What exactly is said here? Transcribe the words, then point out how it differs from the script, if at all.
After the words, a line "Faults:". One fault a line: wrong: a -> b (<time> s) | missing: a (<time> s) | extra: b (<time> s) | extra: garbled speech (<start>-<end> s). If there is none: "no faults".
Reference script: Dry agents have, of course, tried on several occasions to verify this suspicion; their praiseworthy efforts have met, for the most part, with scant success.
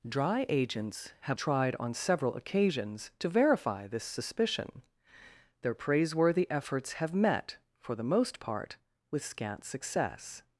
Dry agents have, tried on several occasions to verify this suspicion; their praiseworthy efforts have met, for the most part, with scant success.
Faults:
missing: of course (1.4 s)